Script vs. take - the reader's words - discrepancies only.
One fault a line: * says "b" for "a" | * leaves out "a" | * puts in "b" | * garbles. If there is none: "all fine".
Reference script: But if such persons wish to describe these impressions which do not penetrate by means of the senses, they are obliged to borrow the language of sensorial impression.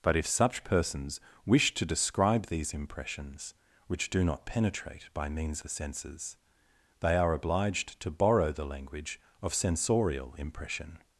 * leaves out "of"